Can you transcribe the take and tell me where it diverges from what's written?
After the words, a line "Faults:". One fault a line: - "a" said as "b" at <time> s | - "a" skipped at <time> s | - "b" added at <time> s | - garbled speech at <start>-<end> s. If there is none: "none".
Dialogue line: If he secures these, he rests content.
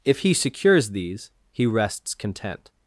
If he secures these, he rests content.
Faults:
none